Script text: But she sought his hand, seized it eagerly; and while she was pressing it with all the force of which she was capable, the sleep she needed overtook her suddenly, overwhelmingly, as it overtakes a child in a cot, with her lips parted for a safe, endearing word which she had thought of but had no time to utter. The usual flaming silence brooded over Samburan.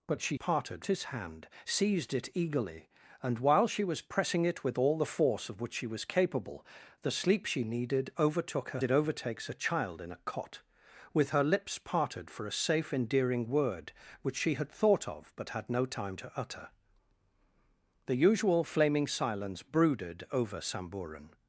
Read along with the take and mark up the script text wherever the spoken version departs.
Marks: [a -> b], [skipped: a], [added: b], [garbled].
But she [sought -> parted] his hand, seized it eagerly; and while she was pressing it with all the force of which she was capable, the sleep she needed overtook her [skipped: suddenly, overwhelmingly, as] it overtakes a child in a cot, with her lips parted for a safe, endearing word which she had thought of but had no time to utter. The usual flaming silence brooded over Samburan.